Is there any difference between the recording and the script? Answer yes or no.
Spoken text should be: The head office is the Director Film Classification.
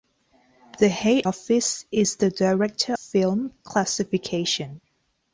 no